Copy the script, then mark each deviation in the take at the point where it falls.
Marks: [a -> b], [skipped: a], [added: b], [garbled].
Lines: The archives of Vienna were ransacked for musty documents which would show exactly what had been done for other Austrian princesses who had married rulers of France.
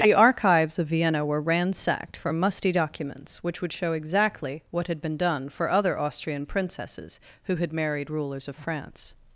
The archives of Vienna were ransacked for musty documents which would show exactly what had been done for other Austrian princesses who had married rulers of France.